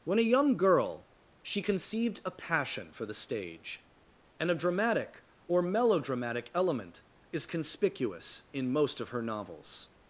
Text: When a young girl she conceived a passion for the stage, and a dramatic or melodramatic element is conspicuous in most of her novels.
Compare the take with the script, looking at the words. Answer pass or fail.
pass